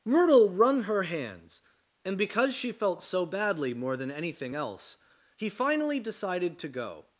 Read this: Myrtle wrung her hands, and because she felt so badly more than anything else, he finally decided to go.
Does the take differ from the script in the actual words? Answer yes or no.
no